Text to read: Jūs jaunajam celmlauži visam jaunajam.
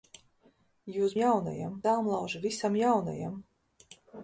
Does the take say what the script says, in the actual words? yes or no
yes